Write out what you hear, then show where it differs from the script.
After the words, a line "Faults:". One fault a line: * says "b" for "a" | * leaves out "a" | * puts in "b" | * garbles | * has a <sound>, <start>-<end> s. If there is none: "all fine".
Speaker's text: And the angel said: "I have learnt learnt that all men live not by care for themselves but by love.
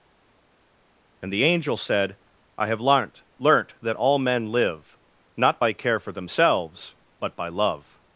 And the angel said: "I have learnt learnt that all men live not by care for themselves but by love.
Faults:
all fine